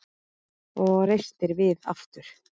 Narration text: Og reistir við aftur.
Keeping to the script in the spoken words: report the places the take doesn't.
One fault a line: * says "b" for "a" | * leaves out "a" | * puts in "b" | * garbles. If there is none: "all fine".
all fine